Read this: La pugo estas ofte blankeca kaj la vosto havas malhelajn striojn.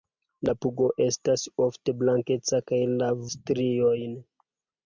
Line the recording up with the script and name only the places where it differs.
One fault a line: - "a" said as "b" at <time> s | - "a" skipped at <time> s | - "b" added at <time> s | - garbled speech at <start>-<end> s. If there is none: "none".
- "vosto havas malhelajn" skipped at 3.1 s